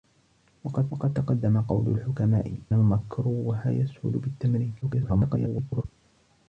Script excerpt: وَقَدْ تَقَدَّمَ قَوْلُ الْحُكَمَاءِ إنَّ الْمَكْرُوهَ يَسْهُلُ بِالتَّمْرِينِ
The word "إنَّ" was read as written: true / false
false